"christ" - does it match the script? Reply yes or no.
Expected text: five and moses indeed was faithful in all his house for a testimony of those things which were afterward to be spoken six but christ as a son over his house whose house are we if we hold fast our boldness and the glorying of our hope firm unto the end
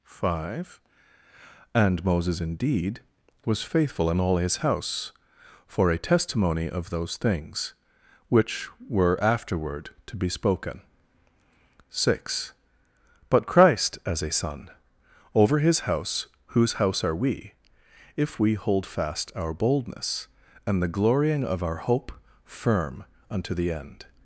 yes